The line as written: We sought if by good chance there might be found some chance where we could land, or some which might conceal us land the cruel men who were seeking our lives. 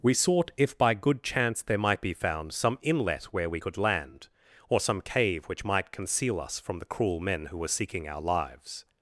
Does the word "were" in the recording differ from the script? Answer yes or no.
no